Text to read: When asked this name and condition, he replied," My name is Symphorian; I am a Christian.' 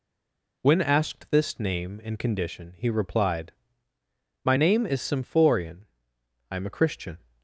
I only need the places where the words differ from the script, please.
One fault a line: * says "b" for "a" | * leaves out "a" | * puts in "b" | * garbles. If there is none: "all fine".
all fine